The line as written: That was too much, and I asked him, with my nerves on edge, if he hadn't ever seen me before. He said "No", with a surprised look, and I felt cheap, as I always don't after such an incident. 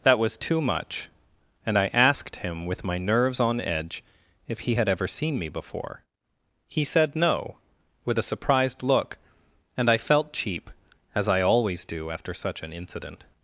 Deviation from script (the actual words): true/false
true